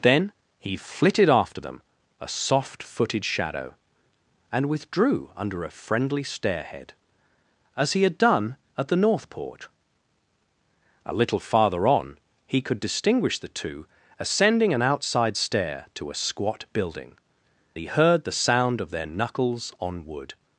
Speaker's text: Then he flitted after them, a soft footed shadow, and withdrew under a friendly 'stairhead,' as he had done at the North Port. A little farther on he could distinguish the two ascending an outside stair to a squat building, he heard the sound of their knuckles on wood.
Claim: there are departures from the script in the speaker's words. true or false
false